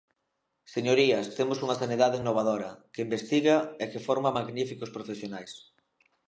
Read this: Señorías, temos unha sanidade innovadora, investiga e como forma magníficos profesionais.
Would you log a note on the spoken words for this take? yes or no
yes